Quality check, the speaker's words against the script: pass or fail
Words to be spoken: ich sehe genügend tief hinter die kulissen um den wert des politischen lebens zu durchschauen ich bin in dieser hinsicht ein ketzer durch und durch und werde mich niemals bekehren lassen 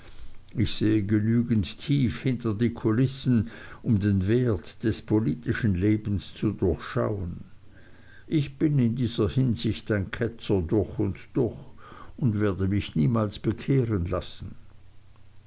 pass